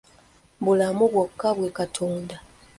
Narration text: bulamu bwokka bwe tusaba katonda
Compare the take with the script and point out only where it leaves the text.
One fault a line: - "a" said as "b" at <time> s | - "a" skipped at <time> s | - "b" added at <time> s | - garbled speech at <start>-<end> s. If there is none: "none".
- "tusaba" skipped at 1.7 s